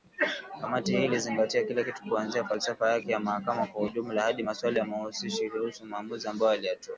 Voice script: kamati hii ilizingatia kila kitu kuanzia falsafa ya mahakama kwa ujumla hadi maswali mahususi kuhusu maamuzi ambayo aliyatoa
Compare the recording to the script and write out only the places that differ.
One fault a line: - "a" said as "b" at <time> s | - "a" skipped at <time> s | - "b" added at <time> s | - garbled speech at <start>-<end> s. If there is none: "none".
- "yake" added at 2.9 s